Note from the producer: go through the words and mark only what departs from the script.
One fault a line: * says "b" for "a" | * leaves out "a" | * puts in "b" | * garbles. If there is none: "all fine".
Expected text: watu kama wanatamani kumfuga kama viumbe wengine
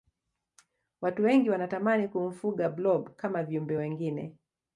* says "wengi" for "kama"
* puts in "blob"